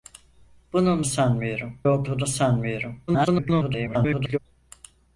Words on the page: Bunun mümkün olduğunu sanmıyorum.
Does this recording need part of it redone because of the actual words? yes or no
yes